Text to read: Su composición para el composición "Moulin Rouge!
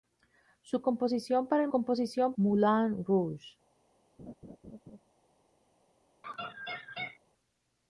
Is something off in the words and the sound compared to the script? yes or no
yes